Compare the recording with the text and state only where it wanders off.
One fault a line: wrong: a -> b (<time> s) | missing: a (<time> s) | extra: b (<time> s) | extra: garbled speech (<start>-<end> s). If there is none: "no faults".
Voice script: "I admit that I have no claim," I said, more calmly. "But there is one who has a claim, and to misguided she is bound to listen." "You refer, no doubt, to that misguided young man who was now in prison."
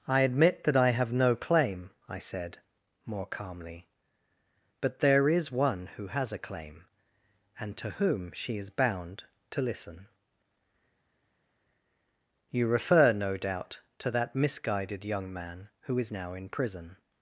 wrong: misguided -> whom (7.9 s)
wrong: was -> is (16.0 s)